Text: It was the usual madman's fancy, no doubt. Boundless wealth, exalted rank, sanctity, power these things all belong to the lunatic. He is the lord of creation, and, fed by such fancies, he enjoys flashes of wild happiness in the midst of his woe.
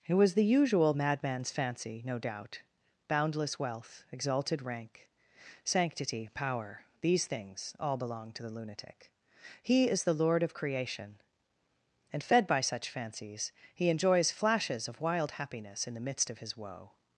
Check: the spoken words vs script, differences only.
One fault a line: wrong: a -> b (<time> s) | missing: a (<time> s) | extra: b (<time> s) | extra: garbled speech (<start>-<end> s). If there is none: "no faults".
no faults